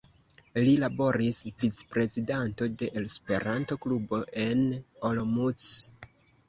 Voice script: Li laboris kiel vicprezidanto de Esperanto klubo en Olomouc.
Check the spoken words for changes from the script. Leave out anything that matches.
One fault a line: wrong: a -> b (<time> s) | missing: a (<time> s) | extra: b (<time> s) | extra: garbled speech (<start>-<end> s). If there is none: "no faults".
missing: kiel (1.4 s)